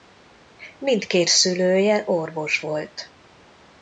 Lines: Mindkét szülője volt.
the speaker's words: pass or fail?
fail